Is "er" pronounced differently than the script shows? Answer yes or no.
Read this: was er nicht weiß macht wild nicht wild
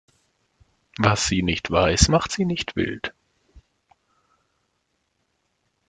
yes